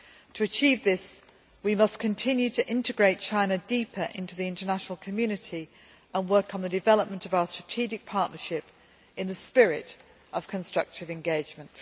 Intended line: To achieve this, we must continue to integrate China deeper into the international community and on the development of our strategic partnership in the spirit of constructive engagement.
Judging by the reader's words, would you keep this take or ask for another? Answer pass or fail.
fail